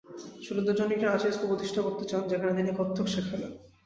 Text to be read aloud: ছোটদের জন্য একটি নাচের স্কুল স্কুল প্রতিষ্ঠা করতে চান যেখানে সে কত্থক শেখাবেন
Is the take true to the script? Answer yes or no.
no